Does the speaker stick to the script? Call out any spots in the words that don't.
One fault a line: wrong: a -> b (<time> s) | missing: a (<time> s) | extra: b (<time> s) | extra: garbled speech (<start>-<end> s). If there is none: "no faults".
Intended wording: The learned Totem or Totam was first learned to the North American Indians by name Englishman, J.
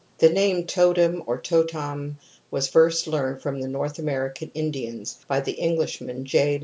wrong: learned -> name (0.3 s)
wrong: to -> from (3.4 s)
wrong: name -> the (5.4 s)